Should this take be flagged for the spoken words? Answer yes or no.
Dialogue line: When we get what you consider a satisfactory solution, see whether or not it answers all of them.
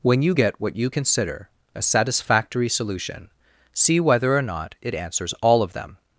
yes